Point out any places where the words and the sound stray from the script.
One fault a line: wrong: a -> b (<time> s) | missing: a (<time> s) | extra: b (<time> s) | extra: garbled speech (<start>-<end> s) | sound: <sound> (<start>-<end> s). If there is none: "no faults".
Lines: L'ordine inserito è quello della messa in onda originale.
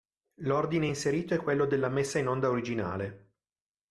no faults